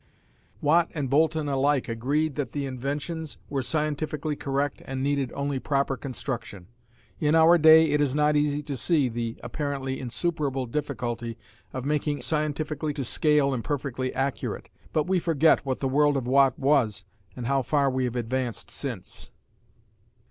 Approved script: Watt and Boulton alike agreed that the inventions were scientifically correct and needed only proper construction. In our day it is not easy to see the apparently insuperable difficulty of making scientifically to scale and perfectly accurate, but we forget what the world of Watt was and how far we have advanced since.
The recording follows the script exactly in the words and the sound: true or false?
true